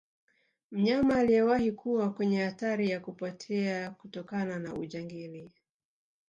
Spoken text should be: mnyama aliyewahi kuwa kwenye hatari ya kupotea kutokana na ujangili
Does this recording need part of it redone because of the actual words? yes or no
no